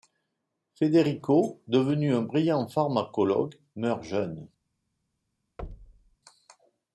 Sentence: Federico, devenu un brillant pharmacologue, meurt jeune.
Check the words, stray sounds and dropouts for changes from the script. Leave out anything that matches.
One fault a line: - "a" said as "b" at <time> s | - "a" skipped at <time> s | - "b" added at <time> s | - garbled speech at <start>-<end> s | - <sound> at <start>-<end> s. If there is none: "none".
- thud at 5.6-6.2 s